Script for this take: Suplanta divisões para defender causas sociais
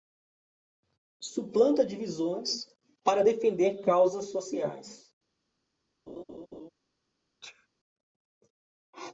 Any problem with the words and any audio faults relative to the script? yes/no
yes